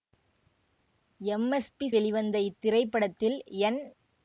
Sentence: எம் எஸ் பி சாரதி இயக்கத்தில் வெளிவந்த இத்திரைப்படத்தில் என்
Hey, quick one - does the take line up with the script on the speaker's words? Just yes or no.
no